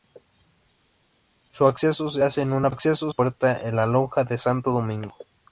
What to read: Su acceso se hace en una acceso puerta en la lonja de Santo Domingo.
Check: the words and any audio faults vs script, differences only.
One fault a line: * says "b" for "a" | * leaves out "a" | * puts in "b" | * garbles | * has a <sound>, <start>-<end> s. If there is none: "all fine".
all fine